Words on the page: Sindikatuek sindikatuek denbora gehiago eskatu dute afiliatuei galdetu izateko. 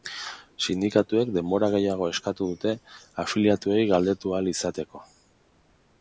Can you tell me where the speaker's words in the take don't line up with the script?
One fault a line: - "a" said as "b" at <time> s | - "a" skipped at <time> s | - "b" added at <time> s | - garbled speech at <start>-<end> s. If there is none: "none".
- "sindikatuek" skipped at 1.3 s
- "ahal" added at 4.4 s